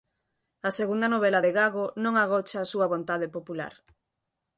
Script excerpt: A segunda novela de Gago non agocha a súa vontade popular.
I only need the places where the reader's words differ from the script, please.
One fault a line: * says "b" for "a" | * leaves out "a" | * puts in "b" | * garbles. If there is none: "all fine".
all fine